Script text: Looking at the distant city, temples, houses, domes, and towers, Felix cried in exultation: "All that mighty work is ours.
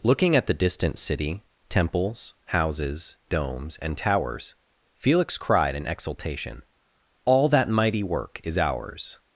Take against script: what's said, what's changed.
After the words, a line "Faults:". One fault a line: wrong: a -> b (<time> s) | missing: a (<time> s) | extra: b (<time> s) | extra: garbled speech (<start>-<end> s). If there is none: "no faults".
Looking at the distant city, temples, houses, domes, and towers, Felix cried in exultation: "All that mighty work is ours.
Faults:
no faults